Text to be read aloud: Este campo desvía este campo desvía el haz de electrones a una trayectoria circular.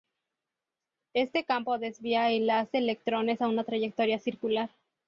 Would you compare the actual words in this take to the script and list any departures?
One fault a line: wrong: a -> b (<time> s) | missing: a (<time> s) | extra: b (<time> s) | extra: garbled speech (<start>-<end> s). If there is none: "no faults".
missing: este campo desvía (2.3 s)